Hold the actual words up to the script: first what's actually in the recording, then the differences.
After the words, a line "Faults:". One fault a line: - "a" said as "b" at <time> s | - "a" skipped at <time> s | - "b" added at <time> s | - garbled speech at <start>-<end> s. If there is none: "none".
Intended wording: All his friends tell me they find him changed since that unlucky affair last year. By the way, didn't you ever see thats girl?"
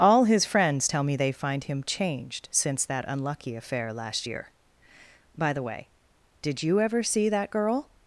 All his friends tell me they find him changed since that unlucky affair last year. By the way, did you ever see that girl?"
Faults:
- "didn't" said as "did" at 6.4 s
- "thats" said as "that" at 7.3 s